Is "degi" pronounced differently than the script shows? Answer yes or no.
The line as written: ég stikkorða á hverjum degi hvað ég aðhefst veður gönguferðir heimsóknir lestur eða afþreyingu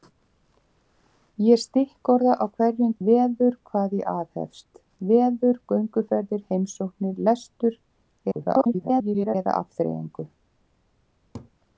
yes